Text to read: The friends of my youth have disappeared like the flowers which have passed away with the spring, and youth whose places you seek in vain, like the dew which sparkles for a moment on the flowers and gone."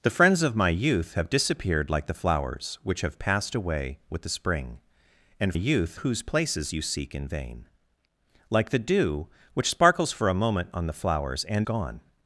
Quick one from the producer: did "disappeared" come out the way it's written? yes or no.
yes